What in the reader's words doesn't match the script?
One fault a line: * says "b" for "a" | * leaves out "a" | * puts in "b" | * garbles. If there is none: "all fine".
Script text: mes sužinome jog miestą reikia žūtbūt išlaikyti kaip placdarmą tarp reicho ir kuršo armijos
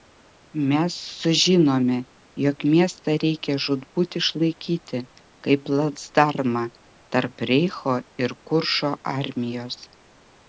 all fine